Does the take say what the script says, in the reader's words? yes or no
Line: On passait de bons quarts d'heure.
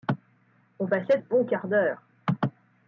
no